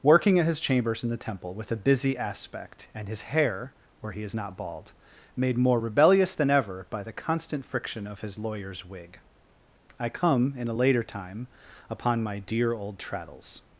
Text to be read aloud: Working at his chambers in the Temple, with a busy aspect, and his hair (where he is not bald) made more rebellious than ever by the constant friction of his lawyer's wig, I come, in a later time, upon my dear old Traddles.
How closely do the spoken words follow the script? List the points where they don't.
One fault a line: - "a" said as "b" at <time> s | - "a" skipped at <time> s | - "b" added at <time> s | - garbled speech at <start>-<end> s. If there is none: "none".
none